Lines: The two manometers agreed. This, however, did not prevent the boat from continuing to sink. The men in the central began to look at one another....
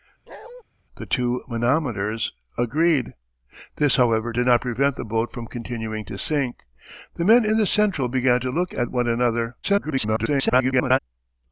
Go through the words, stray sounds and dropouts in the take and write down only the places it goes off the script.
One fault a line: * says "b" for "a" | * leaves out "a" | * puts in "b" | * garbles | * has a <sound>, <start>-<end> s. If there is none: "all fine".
* has a bark, 0.3-0.6 s
* garbles